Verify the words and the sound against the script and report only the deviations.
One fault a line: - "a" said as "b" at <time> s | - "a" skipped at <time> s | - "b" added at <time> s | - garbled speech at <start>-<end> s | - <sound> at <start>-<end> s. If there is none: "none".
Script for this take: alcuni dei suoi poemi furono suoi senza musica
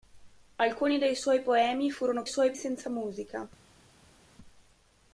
none